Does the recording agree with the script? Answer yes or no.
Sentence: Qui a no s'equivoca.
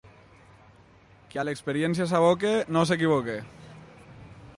no